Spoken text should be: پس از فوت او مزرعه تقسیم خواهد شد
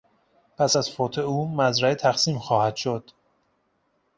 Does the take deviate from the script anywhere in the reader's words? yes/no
no